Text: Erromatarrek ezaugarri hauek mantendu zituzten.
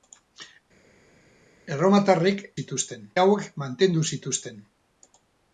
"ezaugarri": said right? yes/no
no